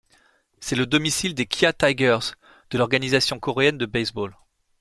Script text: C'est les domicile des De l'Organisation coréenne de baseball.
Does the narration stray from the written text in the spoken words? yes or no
yes